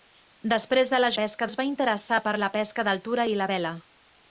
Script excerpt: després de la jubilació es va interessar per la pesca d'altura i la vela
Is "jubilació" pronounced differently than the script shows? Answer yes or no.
yes